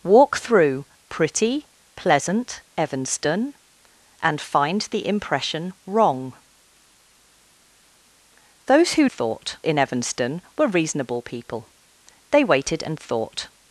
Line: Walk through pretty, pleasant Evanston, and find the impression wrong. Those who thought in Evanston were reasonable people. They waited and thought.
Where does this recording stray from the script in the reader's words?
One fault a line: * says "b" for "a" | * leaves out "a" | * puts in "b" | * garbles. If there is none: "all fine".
all fine